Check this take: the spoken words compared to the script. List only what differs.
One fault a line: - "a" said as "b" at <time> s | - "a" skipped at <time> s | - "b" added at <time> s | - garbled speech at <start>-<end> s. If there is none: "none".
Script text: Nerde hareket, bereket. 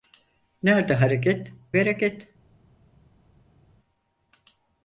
none